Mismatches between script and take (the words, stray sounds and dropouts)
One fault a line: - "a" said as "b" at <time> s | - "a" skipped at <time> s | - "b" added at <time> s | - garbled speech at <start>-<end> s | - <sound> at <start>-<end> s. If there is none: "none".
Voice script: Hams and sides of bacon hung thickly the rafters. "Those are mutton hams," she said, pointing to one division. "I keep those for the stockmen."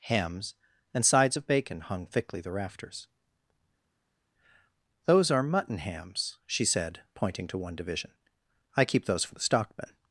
none